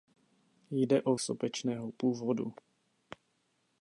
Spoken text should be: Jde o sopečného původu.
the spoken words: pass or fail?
pass